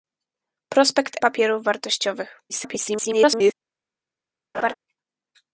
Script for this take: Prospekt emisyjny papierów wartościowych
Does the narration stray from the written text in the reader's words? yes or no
yes